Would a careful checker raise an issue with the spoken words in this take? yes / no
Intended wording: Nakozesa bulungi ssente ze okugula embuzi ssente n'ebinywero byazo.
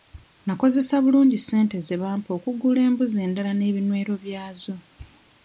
yes